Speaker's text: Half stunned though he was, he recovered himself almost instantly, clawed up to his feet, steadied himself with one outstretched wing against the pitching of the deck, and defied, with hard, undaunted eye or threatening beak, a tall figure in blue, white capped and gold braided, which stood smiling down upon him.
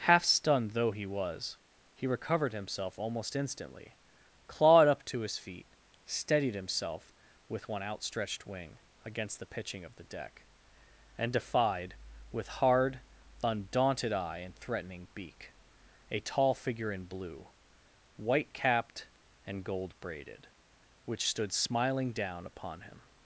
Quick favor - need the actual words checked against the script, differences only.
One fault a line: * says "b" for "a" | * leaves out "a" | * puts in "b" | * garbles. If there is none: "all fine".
* says "and" for "or"